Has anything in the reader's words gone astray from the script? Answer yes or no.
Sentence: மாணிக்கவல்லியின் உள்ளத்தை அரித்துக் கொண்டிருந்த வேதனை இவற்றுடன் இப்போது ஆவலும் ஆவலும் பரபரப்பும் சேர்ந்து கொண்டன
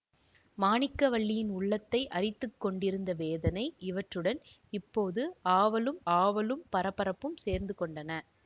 no